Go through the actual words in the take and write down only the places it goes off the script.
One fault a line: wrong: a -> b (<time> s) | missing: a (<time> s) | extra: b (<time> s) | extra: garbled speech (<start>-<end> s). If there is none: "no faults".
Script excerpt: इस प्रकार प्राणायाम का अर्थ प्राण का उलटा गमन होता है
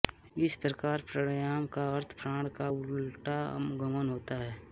no faults